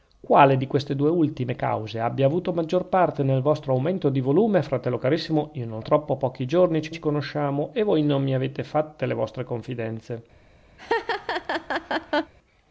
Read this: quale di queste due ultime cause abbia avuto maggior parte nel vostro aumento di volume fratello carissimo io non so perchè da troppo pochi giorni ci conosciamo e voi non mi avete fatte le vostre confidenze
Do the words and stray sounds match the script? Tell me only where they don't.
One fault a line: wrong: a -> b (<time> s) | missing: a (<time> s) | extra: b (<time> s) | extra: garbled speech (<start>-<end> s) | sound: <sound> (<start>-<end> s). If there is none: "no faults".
missing: so perchè da (5.8 s)
extra: ci (6.9 s)
sound: laugh (10.8-12.3 s)